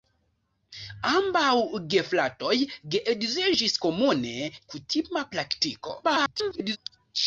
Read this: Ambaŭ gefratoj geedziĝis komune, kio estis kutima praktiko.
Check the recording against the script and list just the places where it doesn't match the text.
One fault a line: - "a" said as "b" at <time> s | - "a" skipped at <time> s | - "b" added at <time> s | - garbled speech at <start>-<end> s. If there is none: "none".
- "kio estis" skipped at 4.3 s
- garbled speech at 6.0-6.8 s